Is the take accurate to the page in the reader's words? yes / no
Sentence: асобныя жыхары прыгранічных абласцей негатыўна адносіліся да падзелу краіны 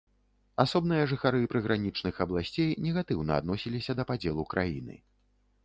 yes